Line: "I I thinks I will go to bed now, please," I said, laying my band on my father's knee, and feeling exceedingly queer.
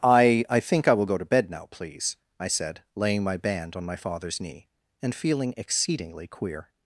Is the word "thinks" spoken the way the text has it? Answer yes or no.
no